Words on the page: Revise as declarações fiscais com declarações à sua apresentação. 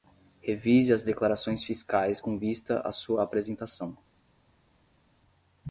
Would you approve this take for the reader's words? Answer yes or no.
no